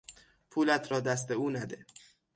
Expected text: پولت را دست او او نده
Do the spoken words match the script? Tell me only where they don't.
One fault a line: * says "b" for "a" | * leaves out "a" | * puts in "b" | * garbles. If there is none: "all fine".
* leaves out "او"